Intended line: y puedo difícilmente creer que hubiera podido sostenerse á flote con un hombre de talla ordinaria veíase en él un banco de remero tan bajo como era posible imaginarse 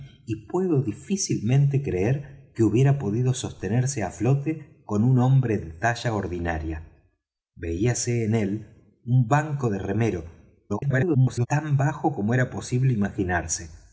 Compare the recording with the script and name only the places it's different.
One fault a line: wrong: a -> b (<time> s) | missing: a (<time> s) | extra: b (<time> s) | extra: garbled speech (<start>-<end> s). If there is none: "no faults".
extra: garbled speech (10.7-11.5 s)